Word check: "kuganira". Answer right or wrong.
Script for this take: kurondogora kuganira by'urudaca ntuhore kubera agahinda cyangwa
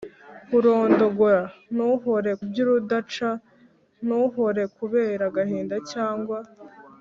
wrong